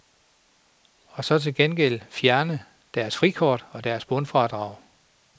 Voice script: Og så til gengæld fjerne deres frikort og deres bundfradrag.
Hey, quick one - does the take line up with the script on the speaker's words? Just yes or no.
yes